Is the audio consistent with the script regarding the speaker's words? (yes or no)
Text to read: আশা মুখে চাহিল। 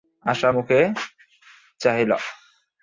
yes